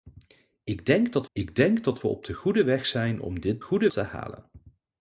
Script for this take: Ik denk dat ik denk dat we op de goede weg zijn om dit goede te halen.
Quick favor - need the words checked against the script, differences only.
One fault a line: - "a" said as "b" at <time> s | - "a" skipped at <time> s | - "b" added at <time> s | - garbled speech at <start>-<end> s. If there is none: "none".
none